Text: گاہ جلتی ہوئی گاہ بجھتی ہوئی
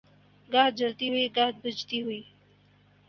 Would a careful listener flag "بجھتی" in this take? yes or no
no